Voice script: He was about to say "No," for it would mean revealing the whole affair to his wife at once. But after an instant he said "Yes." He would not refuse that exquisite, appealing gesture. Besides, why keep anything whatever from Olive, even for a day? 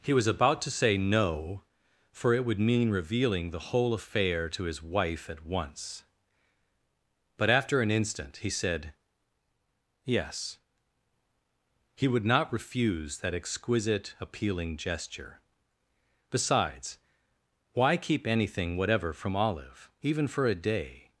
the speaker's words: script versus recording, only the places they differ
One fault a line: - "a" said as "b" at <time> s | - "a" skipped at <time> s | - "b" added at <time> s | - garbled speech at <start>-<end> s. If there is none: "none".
none